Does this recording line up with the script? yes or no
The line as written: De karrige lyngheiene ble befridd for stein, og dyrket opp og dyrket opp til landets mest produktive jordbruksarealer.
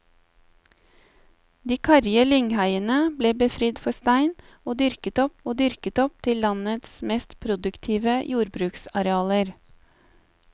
yes